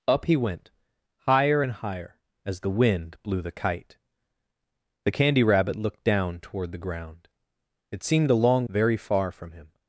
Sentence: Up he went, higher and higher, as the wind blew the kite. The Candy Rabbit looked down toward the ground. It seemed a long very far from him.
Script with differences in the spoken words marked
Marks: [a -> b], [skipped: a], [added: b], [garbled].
Up he went, higher and higher, as the wind blew the kite. The Candy Rabbit looked down toward the ground. It seemed a long very far from him.